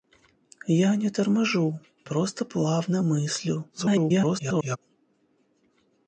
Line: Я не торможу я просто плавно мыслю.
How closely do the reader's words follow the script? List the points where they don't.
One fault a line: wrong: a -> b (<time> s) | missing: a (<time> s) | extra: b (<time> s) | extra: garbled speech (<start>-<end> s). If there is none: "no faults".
missing: я (1.8 s)
extra: garbled speech (3.7-4.8 s)